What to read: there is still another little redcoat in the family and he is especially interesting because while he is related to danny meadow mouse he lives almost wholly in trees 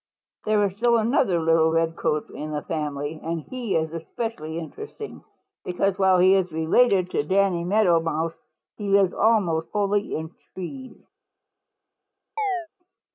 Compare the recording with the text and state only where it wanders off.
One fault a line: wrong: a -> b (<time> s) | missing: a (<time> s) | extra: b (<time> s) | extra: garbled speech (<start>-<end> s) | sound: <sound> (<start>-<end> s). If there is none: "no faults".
sound: chirp (12.4-12.7 s)